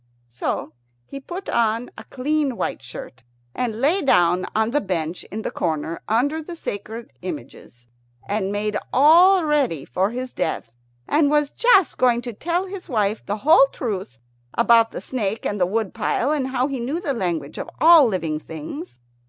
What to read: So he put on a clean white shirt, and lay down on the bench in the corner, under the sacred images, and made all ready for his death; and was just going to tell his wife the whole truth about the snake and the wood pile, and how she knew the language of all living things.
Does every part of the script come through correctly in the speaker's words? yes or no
no